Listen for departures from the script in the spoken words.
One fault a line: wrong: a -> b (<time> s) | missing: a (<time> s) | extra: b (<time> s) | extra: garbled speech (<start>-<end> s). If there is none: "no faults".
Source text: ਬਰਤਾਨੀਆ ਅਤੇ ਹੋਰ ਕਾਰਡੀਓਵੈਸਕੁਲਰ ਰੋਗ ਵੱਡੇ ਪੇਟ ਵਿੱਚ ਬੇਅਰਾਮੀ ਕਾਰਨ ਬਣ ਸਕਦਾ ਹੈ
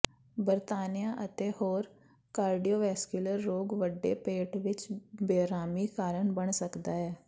no faults